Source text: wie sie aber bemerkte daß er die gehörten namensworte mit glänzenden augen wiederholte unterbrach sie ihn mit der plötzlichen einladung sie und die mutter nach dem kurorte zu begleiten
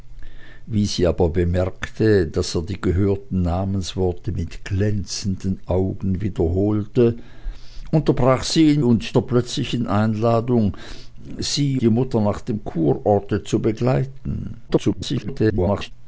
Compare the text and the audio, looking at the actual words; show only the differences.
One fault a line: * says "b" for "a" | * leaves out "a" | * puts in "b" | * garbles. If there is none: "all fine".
* says "und" for "mit"
* leaves out "und"
* garbles